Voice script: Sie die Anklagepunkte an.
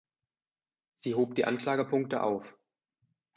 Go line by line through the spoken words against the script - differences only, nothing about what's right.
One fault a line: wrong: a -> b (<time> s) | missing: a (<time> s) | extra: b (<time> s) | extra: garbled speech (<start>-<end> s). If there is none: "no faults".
extra: hob (1.1 s)
wrong: an -> auf (2.2 s)